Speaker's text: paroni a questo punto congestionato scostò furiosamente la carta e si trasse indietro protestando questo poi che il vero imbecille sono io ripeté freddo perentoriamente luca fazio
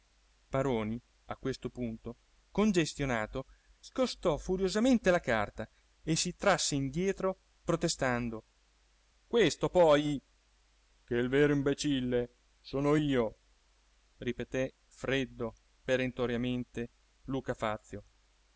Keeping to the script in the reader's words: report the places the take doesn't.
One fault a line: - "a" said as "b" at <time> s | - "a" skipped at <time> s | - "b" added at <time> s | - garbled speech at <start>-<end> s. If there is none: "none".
none